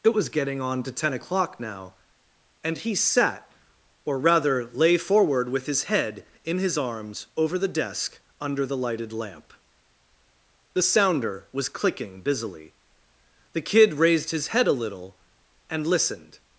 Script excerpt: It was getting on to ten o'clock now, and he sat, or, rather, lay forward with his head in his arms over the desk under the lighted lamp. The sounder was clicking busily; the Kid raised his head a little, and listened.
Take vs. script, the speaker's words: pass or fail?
pass